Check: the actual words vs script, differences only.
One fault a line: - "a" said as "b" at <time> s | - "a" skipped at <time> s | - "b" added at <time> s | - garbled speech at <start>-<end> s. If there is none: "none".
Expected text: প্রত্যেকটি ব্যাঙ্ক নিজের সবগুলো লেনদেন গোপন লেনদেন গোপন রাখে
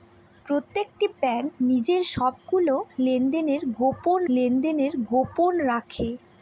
none